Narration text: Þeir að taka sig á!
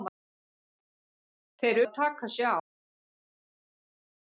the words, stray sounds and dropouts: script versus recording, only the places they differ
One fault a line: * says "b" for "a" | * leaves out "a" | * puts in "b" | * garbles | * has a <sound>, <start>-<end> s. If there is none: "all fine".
all fine